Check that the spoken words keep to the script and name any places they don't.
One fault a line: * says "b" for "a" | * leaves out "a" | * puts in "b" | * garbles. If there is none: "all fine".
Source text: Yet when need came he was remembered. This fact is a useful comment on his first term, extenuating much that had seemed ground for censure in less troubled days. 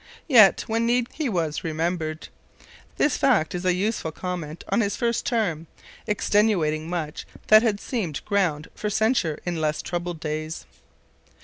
* leaves out "came"